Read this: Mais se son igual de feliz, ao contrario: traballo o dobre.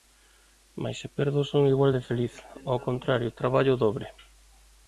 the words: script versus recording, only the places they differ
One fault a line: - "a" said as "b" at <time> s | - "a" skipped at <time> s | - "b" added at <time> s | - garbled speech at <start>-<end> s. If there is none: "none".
- "perdo" added at 1.2 s